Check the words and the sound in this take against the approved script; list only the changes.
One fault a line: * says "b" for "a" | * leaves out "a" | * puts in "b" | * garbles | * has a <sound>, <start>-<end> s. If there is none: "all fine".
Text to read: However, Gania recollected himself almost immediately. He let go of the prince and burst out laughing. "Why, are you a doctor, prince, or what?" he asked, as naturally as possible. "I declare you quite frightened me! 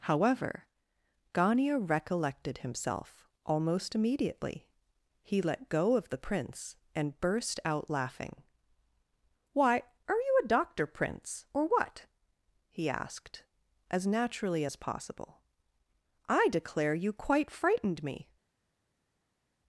all fine